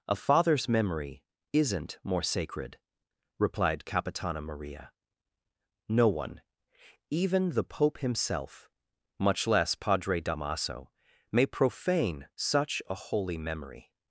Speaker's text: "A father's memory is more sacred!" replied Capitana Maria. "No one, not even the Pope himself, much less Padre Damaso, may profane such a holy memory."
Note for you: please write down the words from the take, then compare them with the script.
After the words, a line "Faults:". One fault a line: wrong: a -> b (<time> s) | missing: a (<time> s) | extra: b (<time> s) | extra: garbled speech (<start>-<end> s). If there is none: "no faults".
"A father's memory isn't more sacred!" replied Capitana Maria. "No one, even the Pope himself, much less Padre Damaso, may profane such a holy memory."
Faults:
wrong: is -> isn't (1.5 s)
missing: not (6.4 s)